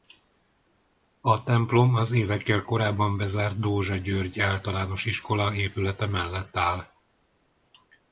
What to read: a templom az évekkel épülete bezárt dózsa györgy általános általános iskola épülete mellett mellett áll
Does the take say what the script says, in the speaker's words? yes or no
no